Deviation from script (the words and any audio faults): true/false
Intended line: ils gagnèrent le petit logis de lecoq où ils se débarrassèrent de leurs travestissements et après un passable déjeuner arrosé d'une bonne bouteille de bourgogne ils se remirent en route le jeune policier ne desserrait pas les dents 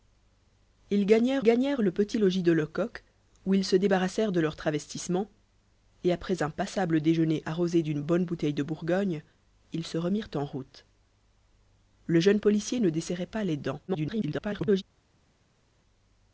true